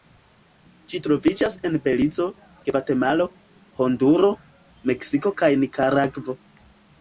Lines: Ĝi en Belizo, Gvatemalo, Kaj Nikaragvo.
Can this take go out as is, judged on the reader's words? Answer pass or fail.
fail